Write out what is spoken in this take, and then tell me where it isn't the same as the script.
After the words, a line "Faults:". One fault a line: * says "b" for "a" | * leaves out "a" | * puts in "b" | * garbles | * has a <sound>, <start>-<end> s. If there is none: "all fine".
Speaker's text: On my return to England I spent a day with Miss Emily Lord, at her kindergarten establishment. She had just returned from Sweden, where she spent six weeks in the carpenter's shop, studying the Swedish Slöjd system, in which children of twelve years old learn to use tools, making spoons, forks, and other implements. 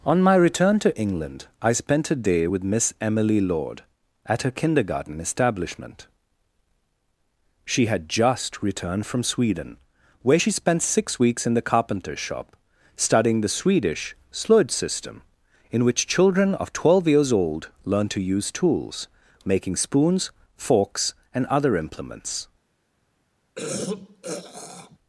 On my return to England I spent a day with Miss Emily Lord, at her kindergarten establishment. She had just returned from Sweden, where she spent six weeks in the carpenter's shop, studying the Swedish Slöjd system, in which children of twelve years old learn to use tools, making spoons, forks, and other implements.
Faults:
* has a throat clearing, 23.6-25.0 s